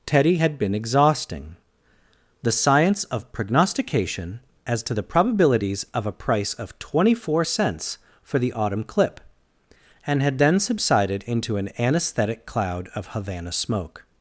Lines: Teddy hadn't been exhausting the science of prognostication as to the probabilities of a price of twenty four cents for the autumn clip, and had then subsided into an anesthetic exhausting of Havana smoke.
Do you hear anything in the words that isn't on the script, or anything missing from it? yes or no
yes